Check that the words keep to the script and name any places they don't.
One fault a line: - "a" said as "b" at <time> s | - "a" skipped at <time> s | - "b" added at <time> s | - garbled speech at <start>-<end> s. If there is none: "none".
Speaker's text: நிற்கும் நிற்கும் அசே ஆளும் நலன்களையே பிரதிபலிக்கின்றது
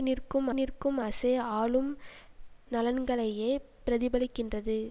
none